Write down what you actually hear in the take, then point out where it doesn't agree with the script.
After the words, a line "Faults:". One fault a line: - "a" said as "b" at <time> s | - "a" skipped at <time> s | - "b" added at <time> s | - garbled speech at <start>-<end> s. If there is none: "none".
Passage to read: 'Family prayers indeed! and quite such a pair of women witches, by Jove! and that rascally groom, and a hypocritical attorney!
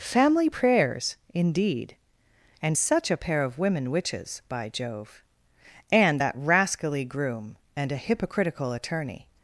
'Family prayers indeed! and such a pair of women witches, by Jove! and that rascally groom, and a hypocritical attorney!
Faults:
- "quite" skipped at 2.8 s